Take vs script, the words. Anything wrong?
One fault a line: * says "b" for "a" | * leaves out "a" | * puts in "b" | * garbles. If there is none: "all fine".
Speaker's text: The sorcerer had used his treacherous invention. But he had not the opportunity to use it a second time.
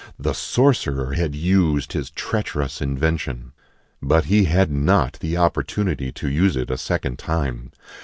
all fine